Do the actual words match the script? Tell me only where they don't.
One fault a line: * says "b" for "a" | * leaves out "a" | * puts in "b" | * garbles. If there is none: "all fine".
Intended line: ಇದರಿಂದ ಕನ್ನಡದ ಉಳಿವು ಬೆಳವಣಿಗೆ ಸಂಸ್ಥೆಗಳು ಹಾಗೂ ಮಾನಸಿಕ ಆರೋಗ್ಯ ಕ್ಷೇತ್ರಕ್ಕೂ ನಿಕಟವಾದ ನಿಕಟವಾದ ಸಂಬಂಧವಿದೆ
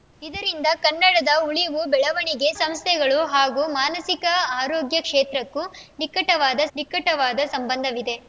all fine